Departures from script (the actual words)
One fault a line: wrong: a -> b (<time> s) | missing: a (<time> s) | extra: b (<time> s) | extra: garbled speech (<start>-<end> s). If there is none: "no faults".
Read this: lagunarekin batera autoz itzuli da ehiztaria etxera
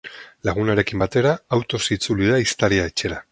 no faults